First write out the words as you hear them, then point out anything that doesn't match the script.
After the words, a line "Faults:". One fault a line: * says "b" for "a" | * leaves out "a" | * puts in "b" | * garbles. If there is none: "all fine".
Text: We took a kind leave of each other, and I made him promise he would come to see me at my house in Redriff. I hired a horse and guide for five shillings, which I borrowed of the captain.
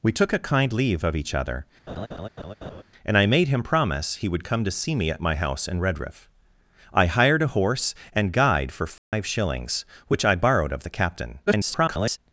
We took a kind leave of each other, and I made him promise he would come to see me at my house in Redriff. I hired a horse and guide for five shillings, which I borrowed of the captain. [garbled]
Faults:
* garbles